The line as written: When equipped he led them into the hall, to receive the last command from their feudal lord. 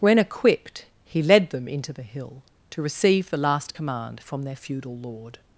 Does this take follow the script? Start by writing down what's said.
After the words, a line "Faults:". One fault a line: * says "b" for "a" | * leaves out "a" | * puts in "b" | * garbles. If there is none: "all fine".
When equipped he led them into the hill, to receive the last command from their feudal lord.
Faults:
* says "hill" for "hall"